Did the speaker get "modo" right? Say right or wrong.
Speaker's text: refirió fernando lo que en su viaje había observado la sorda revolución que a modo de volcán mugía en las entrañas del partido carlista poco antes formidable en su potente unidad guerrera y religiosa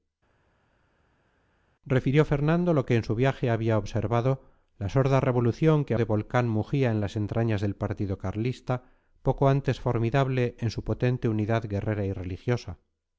wrong